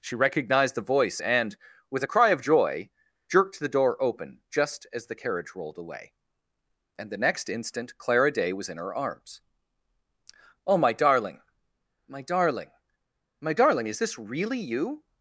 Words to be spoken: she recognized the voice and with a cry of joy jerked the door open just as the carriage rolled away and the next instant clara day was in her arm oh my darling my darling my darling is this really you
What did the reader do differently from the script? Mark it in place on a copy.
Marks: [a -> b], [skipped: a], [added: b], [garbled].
she recognized the voice and with a cry of joy jerked the door open just as the carriage rolled away and the next instant clara day was in her [arm -> arms] oh my darling my darling my darling is this really you